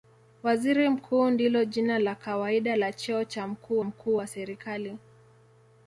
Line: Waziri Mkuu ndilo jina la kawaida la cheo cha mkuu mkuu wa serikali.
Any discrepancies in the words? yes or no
no